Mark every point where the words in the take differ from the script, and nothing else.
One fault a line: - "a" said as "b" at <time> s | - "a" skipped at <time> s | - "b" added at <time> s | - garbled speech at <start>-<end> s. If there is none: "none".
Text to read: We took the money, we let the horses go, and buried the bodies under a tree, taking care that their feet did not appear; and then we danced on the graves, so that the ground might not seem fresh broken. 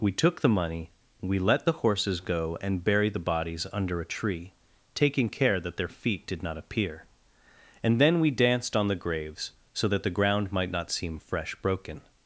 none